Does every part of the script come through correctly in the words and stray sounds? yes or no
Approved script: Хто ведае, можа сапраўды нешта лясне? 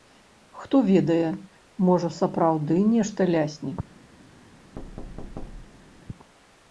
no